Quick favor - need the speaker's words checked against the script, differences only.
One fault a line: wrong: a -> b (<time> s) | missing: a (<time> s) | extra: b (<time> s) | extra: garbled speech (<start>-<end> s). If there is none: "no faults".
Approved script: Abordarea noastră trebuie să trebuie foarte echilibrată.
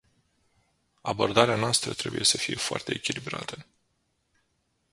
wrong: trebuie -> fie (2.4 s)